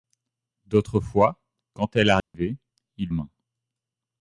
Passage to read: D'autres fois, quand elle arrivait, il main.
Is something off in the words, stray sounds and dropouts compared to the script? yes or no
yes